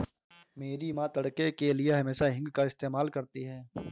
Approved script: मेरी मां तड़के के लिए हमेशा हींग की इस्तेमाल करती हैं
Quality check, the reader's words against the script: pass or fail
fail